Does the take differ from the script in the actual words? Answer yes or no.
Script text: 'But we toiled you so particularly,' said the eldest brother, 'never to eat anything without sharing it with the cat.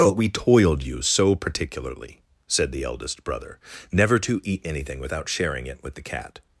no